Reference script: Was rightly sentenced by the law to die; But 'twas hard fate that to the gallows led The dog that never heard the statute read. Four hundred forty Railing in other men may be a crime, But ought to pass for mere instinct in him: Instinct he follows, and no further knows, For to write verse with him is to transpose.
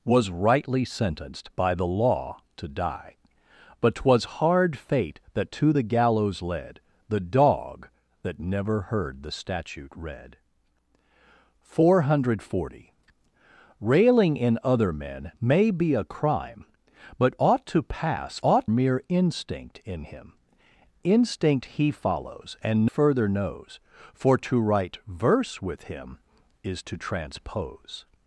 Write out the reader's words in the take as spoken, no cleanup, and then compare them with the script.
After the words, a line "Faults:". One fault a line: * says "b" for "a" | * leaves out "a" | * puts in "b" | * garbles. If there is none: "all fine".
Was rightly sentenced by the law to die; But 'twas hard fate that to the gallows led The dog that never heard the statute read. Four hundred forty Railing in other men may be a crime, But ought to pass ought mere instinct in him: Instinct he follows, and further knows, For to write verse with him is to transpose.
Faults:
* says "ought" for "for"
* leaves out "no"